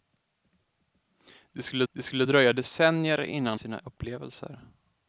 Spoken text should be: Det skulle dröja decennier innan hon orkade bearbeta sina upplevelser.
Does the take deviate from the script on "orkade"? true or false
true